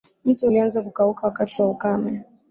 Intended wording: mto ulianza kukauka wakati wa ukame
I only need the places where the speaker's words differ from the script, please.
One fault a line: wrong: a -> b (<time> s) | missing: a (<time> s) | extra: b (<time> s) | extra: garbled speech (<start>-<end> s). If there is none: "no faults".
no faults